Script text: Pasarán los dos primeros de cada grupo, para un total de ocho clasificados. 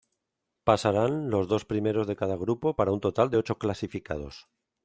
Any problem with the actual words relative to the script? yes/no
no